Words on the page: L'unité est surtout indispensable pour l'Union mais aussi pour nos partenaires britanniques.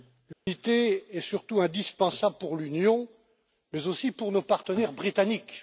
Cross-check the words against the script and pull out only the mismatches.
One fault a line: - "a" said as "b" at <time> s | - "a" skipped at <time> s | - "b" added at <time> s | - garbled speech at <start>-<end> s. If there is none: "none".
none